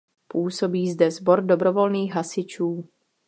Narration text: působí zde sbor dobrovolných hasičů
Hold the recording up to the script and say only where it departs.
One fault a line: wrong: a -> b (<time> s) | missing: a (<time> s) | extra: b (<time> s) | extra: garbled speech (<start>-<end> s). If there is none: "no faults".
no faults